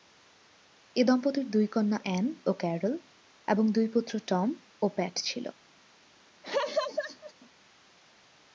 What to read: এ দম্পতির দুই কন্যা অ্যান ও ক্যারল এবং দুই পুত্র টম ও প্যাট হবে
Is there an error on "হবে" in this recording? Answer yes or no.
yes